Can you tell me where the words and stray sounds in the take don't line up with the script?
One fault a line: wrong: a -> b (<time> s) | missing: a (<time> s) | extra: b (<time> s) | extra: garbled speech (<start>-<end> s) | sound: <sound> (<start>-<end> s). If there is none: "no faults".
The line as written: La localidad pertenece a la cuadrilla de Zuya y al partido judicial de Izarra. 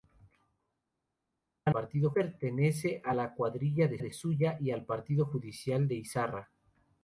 wrong: localidad -> partido (1.7 s)
extra: de (4.0 s)